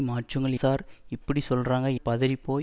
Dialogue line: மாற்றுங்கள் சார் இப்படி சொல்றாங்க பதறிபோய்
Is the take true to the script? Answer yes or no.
yes